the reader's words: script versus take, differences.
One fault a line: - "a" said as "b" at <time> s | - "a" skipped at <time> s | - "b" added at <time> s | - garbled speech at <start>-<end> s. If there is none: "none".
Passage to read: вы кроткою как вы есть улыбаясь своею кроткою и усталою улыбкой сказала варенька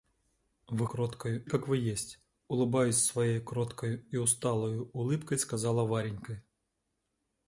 none